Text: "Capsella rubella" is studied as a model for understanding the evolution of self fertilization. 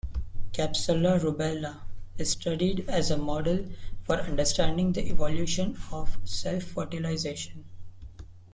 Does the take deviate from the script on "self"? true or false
false